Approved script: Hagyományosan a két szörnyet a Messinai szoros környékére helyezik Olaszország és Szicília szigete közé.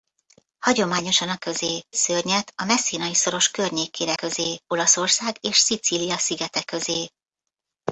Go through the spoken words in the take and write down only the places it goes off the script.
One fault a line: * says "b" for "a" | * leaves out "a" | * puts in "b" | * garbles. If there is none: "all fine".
* says "közé" for "két"
* says "közé" for "helyezik"